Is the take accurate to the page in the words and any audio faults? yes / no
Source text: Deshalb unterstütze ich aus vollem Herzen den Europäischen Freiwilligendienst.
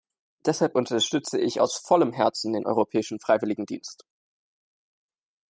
yes